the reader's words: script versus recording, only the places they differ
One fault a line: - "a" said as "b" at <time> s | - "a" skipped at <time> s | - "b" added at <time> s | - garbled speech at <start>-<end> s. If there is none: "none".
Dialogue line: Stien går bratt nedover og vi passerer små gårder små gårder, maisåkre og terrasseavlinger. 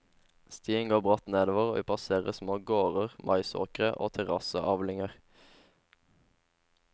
- "små gårder" skipped at 3.2 s